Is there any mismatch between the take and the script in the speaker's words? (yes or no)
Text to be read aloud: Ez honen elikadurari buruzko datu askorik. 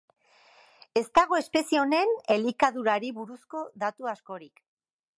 yes